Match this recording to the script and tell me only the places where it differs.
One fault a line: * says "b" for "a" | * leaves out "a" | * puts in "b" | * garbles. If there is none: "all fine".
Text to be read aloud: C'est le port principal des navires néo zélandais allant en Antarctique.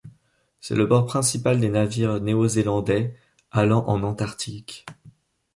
all fine